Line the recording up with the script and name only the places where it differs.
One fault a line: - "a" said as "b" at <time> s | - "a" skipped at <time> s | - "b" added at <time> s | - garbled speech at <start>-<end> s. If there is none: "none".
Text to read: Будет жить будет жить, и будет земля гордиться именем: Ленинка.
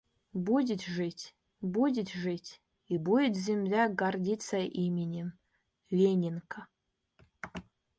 none